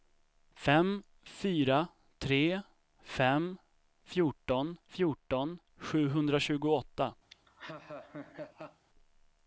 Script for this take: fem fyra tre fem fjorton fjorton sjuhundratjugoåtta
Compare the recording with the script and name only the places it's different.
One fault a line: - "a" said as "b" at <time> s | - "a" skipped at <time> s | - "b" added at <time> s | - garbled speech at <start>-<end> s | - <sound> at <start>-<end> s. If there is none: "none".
- laugh at 7.3-8.9 s